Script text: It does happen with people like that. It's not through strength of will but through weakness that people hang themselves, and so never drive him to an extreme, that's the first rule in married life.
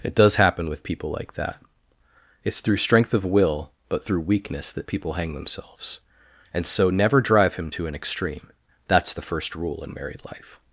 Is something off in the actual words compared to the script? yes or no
yes